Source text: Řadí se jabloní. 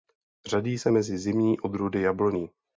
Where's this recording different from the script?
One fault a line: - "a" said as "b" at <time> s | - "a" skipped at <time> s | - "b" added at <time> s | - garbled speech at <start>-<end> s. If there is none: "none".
- "mezi zimní odrůdy" added at 0.9 s